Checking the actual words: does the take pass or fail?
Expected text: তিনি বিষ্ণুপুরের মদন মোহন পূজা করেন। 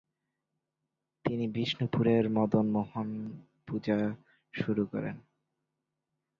fail